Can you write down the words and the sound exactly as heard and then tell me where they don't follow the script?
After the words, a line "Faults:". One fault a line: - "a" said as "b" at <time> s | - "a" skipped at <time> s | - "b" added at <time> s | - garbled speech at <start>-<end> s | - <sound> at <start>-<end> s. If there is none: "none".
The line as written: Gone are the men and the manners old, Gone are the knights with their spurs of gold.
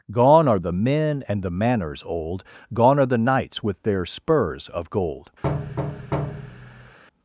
Gone are the men and the manners old, Gone are the knights with their spurs of gold.
Faults:
- thud at 5.4-7.0 s